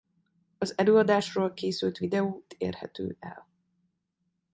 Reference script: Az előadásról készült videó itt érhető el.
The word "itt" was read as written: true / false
false